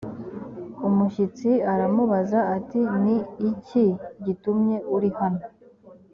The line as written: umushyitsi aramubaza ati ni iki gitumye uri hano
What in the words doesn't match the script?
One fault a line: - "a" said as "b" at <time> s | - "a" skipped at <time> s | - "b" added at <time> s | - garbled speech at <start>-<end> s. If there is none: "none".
none